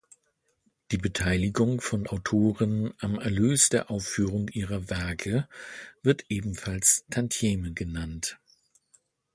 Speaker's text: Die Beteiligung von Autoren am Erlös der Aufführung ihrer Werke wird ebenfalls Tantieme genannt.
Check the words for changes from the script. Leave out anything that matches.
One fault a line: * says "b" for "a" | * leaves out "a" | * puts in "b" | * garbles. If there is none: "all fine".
all fine